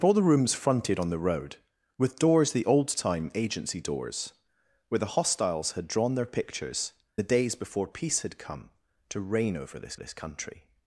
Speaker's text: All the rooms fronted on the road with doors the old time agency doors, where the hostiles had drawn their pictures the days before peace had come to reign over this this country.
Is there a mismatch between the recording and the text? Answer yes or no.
no